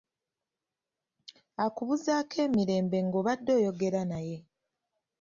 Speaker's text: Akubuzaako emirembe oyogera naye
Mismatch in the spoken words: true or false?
true